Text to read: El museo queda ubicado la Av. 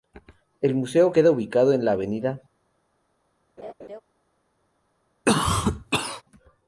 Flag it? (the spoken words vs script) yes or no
yes